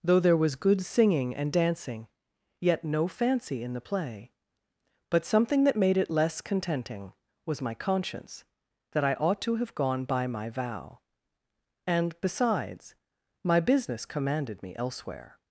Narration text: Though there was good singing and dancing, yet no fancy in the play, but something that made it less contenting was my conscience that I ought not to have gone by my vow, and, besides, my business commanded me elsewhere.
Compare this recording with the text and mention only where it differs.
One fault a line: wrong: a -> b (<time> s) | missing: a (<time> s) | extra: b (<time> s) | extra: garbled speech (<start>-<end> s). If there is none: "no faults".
missing: not (9.4 s)